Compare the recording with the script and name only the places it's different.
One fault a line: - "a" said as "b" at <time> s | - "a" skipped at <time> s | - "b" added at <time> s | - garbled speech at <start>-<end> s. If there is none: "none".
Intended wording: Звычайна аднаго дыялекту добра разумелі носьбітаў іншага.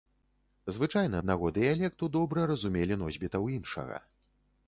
none